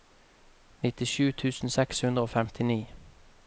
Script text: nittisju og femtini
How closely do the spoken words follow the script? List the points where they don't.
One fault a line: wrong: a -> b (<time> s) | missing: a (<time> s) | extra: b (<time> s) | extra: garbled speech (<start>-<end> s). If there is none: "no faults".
extra: tusen seks hundre (1.4 s)